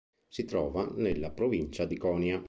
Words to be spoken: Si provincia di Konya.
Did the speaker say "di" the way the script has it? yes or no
yes